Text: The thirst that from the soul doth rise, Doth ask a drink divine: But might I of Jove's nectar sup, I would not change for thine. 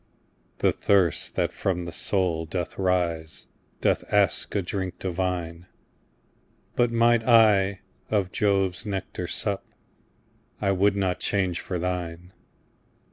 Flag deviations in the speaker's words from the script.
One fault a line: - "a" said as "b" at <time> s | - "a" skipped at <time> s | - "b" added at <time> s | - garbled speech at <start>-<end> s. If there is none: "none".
none